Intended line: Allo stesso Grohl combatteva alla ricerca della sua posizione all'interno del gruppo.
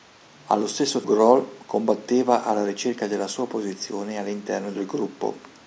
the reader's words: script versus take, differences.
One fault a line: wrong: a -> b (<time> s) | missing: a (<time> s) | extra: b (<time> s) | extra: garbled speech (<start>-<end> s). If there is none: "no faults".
no faults